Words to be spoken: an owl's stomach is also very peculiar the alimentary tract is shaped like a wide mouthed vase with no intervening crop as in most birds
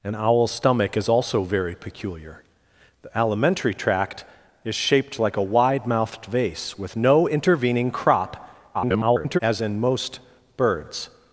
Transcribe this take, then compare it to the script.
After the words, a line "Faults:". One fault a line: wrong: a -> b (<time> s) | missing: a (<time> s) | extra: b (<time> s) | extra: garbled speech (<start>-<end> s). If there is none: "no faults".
an owl's stomach is also very peculiar the alimentary tract is shaped like a wide mouthed vase with no intervening crop [garbled] as in most birds
Faults:
extra: garbled speech (8.7-9.4 s)